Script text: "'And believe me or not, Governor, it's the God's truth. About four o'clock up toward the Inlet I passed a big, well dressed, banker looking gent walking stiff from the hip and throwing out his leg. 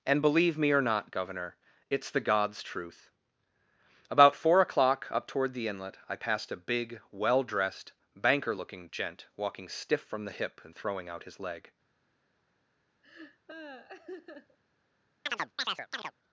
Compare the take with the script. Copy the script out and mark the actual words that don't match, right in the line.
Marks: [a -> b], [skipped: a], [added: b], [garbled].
"'And believe me or not, Governor, it's the God's truth. About four o'clock up toward the Inlet I passed a big, well dressed, banker looking gent walking stiff from the hip and throwing out his leg.